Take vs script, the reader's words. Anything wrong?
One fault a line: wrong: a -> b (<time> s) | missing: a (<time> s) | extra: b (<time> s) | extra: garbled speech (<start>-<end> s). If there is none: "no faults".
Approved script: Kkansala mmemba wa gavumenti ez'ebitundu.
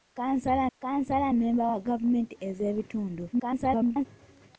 extra: kkansala (0.8 s)
extra: garbled speech (3.3-4.1 s)